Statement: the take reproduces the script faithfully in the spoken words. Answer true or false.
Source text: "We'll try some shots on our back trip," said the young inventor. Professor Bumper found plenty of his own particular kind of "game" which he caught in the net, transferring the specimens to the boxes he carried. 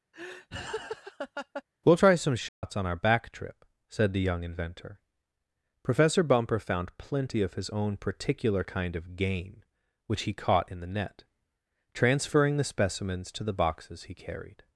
true